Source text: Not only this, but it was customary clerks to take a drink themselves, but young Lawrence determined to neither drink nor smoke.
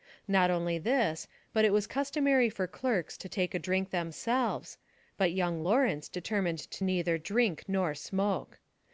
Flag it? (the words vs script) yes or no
yes